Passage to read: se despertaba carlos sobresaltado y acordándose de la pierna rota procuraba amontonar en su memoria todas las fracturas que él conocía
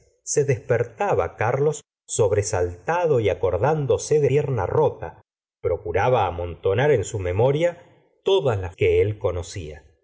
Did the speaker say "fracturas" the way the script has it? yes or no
no